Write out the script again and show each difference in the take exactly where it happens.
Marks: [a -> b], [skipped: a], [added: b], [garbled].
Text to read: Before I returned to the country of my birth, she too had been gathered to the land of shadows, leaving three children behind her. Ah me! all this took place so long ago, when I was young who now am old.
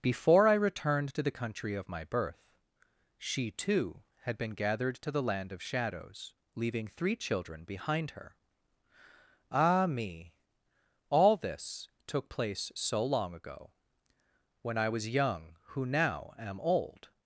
Before I returned to the country of my birth, she too had been gathered to the land of shadows, leaving three children behind her. Ah me! all this took place so long ago, when I was young who now am old.